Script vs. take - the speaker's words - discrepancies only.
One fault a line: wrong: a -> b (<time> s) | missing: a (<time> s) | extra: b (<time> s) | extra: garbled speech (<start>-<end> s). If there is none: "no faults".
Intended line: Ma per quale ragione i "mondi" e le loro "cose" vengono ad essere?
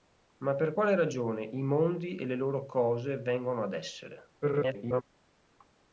extra: garbled speech (4.4-5.0 s)